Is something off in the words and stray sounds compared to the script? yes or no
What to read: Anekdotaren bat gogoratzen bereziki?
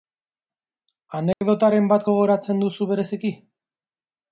yes